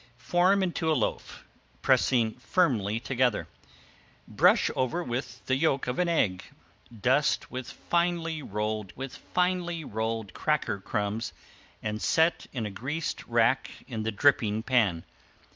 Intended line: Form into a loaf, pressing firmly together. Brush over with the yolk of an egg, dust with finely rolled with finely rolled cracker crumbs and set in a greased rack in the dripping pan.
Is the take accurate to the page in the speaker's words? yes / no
yes